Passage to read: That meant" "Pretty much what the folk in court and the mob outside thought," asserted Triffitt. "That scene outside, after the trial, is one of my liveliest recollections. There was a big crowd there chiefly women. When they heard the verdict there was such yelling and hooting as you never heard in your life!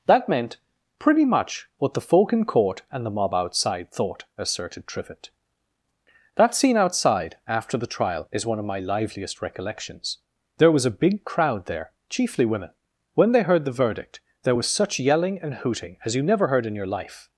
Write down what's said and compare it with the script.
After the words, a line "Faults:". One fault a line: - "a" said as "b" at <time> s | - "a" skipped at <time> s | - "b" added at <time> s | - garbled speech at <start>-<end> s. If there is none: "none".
That meant" "Pretty much what the folk in court and the mob outside thought," asserted Triffitt. "That scene outside, after the trial, is one of my liveliest recollections. There was a big crowd there chiefly women. When they heard the verdict there was such yelling and hooting as you never heard in your life!
Faults:
none